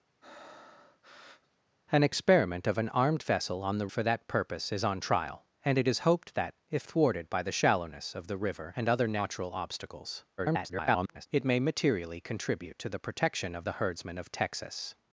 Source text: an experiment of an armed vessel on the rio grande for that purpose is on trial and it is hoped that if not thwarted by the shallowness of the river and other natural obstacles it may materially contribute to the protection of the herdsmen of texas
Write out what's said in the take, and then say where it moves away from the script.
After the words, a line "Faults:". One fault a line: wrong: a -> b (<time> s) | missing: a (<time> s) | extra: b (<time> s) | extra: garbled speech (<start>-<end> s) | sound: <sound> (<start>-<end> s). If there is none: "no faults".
an experiment of an armed vessel on the for that purpose is on trial and it is hoped that if thwarted by the shallowness of the river and other natural obstacles [garbled] it may materially contribute to the protection of the herdsmen of texas
Faults:
sound: breath (0.2-1.6 s)
missing: rio grande (3.9 s)
missing: not (6.9 s)
extra: garbled speech (10.4-11.3 s)